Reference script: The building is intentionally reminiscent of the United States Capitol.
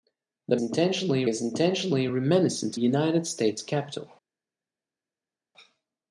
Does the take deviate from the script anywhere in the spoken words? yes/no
yes